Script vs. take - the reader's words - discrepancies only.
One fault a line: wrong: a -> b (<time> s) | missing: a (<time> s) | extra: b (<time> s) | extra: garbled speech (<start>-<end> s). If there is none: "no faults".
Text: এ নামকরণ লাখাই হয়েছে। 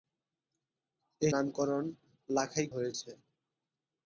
no faults